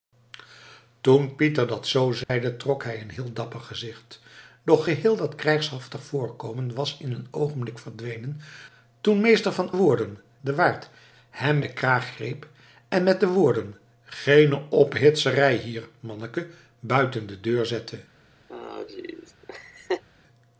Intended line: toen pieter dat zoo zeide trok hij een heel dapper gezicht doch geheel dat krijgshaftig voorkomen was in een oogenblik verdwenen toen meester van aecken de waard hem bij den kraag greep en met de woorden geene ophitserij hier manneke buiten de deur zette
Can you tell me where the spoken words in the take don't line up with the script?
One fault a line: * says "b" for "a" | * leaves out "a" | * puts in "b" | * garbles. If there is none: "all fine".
* says "woorden" for "aecken"
* leaves out "bij"